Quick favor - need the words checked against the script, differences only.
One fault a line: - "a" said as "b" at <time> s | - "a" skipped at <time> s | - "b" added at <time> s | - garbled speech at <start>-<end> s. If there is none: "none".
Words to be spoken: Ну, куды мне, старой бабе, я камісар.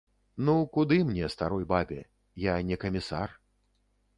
- "не" added at 2.6 s